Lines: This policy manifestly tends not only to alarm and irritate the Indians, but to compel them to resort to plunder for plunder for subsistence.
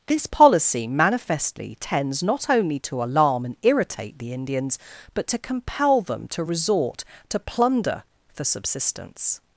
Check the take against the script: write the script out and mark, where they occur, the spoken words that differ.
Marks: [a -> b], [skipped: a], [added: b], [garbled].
This policy manifestly tends not only to alarm and irritate the Indians, but to compel them to resort to plunder for [skipped: plunder for] subsistence.